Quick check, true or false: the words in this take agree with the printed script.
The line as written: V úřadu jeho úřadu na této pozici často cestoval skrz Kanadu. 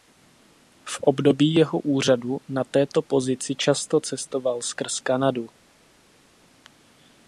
false